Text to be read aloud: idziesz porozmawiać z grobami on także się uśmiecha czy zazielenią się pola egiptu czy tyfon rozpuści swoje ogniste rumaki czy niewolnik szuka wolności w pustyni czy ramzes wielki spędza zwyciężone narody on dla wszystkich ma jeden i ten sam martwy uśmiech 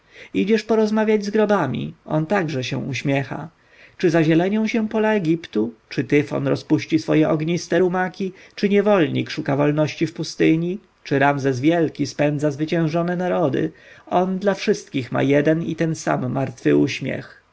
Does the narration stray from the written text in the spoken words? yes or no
no